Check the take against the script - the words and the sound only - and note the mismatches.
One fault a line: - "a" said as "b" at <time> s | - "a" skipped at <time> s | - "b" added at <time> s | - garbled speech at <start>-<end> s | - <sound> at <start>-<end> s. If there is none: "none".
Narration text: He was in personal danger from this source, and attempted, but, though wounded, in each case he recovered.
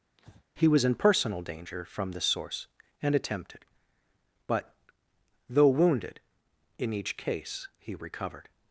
- breath at 0.2-0.4 s